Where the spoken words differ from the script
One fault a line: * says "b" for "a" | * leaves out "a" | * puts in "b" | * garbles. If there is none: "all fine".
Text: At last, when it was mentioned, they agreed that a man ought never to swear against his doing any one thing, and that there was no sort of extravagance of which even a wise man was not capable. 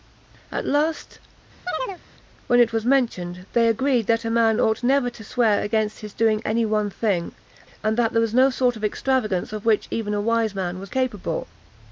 * leaves out "not"